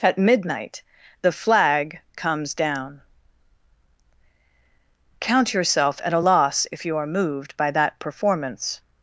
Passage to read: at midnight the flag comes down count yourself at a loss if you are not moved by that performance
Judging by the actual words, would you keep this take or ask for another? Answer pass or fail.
fail